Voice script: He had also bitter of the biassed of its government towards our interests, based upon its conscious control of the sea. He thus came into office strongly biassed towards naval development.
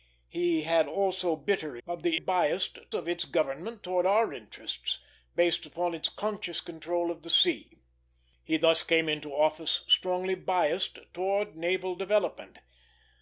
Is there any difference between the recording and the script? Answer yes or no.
no